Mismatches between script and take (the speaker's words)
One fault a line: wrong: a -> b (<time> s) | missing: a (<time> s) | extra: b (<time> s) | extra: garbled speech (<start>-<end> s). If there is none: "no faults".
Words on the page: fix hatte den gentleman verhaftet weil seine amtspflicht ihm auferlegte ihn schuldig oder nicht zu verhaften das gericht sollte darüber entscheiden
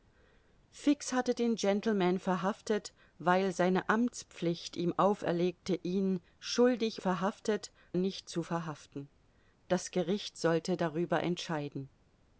wrong: oder -> verhaftet (7.0 s)